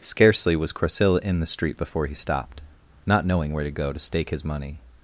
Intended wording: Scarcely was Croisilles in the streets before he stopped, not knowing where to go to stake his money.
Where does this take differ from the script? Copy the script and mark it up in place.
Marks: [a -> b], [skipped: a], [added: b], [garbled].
Scarcely was Croisilles in the [streets -> street] before he stopped, not knowing where to go to stake his money.